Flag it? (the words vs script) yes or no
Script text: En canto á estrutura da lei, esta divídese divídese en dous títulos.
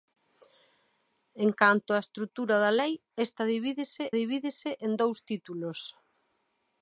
no